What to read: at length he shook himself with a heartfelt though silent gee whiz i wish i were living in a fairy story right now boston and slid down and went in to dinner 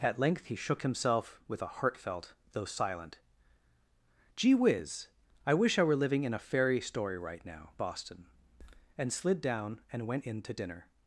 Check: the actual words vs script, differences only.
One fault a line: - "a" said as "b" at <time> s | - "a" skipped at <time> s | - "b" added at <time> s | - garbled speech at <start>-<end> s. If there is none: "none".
none